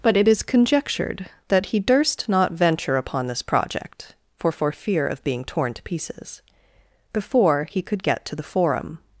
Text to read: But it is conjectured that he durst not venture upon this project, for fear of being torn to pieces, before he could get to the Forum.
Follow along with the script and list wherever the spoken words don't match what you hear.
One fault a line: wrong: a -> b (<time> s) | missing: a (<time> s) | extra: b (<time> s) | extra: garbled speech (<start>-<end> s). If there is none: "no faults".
extra: for (4.5 s)